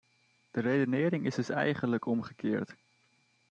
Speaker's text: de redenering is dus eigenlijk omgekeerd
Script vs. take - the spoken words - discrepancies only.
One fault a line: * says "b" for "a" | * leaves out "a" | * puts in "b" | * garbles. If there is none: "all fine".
all fine